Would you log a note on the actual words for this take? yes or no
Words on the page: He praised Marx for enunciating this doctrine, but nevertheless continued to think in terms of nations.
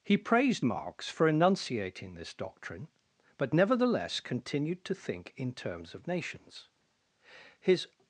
yes